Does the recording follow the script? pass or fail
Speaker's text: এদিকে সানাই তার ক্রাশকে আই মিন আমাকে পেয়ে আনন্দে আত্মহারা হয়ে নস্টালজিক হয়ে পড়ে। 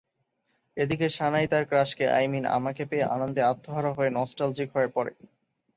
pass